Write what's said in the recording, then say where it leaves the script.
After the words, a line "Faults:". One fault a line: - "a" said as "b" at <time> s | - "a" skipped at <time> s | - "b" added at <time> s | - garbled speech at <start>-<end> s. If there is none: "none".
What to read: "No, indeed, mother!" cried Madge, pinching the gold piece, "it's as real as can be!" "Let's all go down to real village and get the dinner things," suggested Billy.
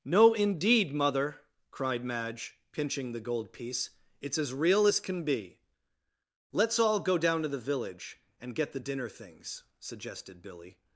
"No, indeed, mother!" cried Madge, pinching the gold piece, "it's as real as can be!" "Let's all go down to the village and get the dinner things," suggested Billy.
Faults:
- "real" said as "the" at 7.5 s